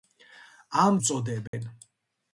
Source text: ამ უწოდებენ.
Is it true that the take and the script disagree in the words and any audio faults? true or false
true